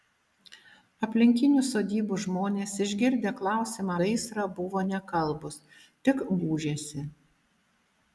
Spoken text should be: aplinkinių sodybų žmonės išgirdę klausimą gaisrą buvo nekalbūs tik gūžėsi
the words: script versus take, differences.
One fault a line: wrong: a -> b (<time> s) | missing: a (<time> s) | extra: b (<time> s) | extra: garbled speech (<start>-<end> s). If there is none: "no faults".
no faults